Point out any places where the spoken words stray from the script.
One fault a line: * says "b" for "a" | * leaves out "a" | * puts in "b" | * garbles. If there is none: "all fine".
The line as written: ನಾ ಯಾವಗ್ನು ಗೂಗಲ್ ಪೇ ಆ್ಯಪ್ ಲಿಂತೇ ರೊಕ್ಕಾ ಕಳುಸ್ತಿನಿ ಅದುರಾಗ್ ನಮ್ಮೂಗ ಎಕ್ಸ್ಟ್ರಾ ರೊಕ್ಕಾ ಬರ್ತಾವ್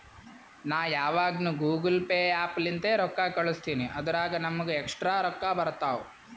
all fine